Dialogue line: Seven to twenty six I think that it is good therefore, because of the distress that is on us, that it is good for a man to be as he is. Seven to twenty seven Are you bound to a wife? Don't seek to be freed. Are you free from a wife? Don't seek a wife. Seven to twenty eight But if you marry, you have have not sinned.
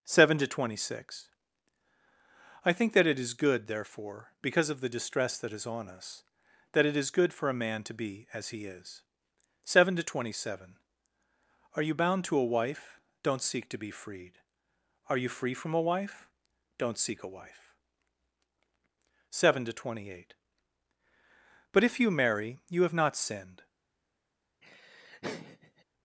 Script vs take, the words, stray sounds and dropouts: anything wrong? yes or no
yes